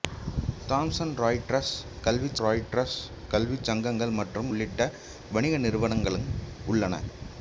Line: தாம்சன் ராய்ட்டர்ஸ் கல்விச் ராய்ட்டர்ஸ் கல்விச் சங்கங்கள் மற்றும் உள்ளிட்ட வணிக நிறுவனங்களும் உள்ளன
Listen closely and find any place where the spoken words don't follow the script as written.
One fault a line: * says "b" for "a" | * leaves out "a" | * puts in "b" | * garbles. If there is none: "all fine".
all fine